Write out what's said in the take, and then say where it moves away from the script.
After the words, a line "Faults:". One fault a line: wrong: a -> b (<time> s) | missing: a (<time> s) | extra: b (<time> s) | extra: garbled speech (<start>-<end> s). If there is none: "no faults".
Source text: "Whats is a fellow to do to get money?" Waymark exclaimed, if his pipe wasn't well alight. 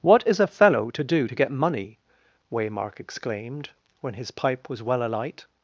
"What is a fellow to do to get money?" Waymark exclaimed, when his pipe was well alight.
Faults:
wrong: Whats -> What (0.0 s)
wrong: if -> when (4.0 s)
wrong: wasn't -> was (4.7 s)